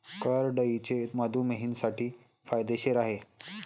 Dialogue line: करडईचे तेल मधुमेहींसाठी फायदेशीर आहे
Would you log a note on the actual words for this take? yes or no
yes